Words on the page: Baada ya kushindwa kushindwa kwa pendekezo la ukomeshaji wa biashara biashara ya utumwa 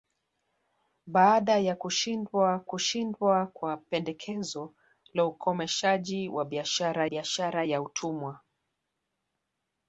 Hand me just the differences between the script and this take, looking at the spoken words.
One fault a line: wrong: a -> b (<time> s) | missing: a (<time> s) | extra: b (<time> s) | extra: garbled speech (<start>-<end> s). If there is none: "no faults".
no faults